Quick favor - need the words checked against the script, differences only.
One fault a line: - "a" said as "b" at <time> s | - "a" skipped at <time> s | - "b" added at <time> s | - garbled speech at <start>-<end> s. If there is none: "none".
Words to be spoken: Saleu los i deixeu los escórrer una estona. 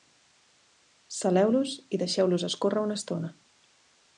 none